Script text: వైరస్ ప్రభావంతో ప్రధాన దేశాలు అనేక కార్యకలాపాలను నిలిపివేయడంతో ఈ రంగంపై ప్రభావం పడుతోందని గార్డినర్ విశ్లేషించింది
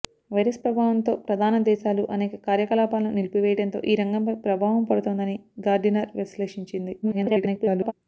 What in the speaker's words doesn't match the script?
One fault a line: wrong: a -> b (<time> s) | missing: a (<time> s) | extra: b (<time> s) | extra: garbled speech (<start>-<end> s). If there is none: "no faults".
extra: garbled speech (7.0-7.9 s)